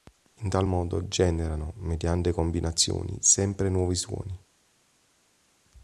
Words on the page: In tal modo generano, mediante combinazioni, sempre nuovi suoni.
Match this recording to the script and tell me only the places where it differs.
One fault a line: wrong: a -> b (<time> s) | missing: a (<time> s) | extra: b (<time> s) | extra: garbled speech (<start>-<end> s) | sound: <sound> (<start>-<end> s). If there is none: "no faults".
no faults